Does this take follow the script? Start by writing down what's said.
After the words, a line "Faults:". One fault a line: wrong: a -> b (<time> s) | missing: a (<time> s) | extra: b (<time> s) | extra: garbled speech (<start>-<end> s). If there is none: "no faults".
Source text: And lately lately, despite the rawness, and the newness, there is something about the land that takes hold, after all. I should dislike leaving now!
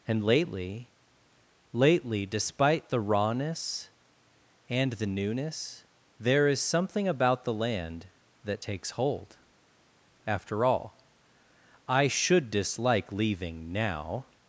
And lately lately, despite the rawness, and the newness, there is something about the land that takes hold, after all. I should dislike leaving now!
Faults:
no faults